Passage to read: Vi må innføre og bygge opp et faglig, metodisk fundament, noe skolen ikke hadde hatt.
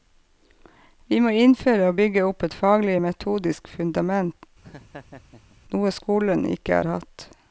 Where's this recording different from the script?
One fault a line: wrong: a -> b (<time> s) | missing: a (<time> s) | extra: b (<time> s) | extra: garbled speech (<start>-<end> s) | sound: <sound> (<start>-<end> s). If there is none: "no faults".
sound: laugh (4.6-5.6 s)
wrong: hadde -> har (6.8 s)